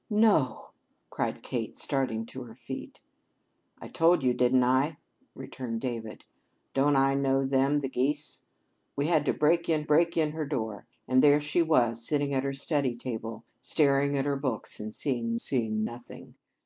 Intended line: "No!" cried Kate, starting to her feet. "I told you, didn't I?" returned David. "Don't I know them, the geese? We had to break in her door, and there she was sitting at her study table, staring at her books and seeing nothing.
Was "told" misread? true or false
false